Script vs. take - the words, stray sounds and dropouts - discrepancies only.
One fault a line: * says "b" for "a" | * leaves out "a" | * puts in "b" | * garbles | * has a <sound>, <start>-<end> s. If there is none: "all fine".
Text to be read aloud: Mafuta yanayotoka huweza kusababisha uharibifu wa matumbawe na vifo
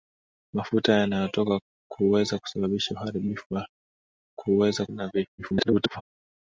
* says "huweza" for "matumbawe"
* garbles